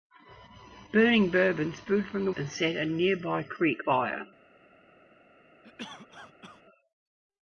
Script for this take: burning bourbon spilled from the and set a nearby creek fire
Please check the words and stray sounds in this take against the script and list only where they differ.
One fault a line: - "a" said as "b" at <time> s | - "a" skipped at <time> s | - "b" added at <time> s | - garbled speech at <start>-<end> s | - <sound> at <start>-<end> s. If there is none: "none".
- cough at 5.6-6.6 s